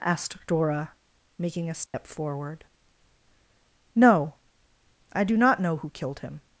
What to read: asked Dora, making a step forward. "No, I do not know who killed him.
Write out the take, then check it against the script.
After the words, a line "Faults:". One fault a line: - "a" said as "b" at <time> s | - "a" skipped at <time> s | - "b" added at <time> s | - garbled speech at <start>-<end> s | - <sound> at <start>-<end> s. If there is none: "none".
asked Dora, making a step forward. "No, I do not know who killed him.
Faults:
- dropout at 1.9-1.9 s